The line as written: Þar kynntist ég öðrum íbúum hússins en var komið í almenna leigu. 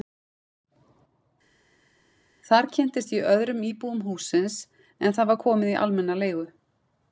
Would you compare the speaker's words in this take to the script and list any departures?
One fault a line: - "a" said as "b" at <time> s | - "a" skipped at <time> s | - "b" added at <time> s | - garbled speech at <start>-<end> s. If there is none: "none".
- "það" added at 5.2 s